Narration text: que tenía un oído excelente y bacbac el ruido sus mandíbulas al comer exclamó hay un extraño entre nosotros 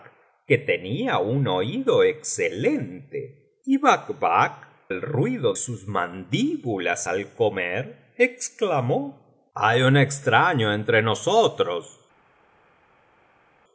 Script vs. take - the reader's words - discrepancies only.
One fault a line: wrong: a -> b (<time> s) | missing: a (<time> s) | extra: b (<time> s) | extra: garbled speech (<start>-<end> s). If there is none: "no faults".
no faults